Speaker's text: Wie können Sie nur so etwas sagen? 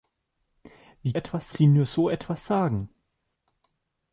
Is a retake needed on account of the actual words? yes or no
yes